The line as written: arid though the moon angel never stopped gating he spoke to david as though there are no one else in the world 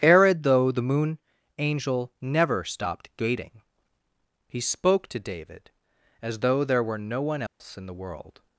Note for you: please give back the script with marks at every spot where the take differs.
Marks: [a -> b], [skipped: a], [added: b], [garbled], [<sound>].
arid though the moon angel never stopped gating he spoke to david as though there [are -> were] no one else [dropout] in the world